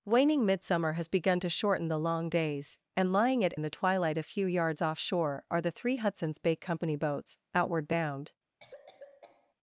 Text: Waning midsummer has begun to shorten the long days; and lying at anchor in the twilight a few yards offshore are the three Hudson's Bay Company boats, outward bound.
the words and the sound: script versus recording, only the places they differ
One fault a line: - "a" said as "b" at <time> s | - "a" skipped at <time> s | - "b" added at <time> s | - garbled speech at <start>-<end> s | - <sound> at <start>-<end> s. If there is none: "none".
- "anchor" skipped at 3.5 s
- cough at 8.6-9.5 s